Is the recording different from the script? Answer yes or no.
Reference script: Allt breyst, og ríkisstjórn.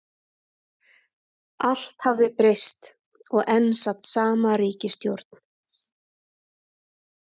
yes